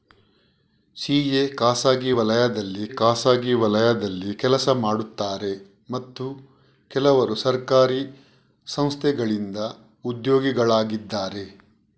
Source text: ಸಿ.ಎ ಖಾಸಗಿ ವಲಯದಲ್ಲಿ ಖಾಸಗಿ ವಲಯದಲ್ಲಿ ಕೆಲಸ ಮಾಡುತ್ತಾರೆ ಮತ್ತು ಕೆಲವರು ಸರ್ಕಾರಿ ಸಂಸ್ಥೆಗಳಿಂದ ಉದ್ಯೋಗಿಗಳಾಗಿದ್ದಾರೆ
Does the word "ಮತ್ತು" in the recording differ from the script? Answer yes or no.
no